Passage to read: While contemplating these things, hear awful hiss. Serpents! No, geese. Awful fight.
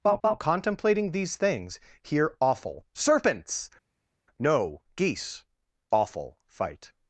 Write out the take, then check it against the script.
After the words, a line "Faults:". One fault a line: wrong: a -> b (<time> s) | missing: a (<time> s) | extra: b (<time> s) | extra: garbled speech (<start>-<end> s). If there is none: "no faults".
While while contemplating these things, hear awful. Serpents! No, geese. Awful fight.
Faults:
extra: while (0.2 s)
missing: hiss (2.8 s)